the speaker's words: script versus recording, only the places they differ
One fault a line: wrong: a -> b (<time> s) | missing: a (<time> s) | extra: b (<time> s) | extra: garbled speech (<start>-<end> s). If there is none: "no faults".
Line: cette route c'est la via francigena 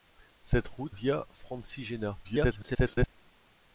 missing: c'est la (0.9 s)
extra: garbled speech (2.2-3.1 s)